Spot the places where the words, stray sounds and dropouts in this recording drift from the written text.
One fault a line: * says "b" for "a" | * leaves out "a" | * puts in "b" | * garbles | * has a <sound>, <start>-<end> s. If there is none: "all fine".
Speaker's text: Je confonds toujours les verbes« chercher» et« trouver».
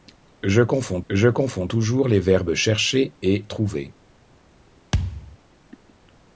* puts in "je confonds"
* has a thud, 4.9-5.4 s